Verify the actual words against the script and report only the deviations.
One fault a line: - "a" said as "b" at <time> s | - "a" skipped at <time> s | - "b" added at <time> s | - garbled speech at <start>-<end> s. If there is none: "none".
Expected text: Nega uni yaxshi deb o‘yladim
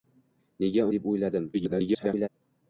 - "uni yaxshi" skipped at 0.8 s
- garbled speech at 1.5-2.3 s